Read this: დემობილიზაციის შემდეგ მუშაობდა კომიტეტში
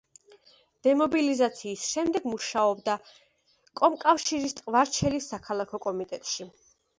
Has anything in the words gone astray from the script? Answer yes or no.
yes